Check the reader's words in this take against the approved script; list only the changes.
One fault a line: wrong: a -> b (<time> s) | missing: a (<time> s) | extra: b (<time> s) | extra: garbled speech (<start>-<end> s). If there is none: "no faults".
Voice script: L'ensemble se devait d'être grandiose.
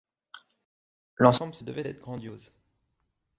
no faults